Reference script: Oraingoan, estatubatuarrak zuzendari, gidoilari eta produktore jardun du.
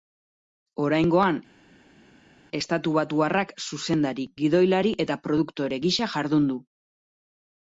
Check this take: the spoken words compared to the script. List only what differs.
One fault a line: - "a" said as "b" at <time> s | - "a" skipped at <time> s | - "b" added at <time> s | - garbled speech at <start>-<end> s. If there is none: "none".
- "gisa" added at 5.9 s